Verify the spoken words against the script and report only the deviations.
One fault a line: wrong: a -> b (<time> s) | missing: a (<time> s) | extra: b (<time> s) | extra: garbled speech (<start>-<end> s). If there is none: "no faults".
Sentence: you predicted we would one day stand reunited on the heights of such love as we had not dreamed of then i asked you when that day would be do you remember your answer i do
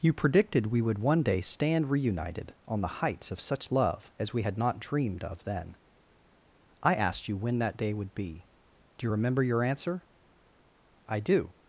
no faults